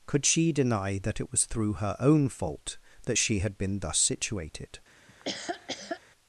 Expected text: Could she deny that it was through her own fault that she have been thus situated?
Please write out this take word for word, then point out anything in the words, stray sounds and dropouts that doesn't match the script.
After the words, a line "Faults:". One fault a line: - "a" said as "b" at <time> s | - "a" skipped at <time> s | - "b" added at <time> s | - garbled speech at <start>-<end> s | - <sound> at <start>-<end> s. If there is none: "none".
Could she deny that it was through her own fault that she had been thus situated?
Faults:
- "have" said as "had" at 3.4 s
- laugh at 5.1-6.0 s